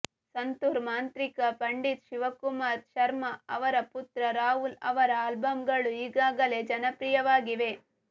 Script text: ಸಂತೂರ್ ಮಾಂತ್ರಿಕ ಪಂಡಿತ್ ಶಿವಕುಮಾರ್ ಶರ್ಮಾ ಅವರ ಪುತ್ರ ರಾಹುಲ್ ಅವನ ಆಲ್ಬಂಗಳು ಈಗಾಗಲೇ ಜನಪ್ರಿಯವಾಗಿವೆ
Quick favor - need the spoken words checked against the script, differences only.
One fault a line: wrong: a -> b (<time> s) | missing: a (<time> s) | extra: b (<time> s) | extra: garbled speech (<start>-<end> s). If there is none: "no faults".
wrong: ಅವನ -> ಅವರ (4.9 s)